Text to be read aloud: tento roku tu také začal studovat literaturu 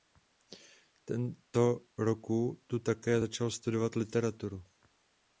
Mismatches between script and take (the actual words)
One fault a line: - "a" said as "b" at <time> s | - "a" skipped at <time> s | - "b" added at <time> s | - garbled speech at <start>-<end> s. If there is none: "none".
none